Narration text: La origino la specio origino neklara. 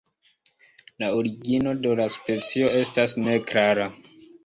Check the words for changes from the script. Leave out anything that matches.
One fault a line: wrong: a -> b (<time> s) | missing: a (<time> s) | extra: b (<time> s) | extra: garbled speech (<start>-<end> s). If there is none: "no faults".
extra: de (1.9 s)
wrong: origino -> estas (2.9 s)